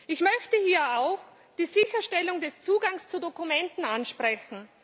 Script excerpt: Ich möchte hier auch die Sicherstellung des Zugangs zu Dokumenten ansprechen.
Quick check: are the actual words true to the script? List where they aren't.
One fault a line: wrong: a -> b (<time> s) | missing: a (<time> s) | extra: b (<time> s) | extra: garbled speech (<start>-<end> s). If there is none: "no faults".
no faults